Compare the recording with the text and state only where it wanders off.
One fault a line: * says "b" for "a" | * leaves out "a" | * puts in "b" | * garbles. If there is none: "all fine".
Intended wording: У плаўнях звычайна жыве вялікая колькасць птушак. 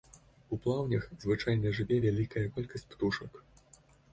all fine